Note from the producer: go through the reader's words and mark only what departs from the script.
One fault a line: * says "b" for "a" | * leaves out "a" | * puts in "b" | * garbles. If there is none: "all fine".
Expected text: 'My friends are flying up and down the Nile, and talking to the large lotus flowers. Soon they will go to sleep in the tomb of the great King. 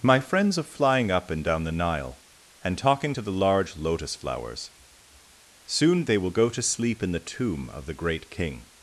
all fine